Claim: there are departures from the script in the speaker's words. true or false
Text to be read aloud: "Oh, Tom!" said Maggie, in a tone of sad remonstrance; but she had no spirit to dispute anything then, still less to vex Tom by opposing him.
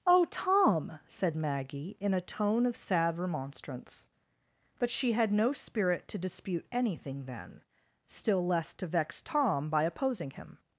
false